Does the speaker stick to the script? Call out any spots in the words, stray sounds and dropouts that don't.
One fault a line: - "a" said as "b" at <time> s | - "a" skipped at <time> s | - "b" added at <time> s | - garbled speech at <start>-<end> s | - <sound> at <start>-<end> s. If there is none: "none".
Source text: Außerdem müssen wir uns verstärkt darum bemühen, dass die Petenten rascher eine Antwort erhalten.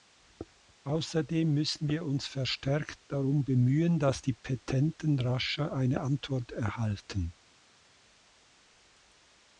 none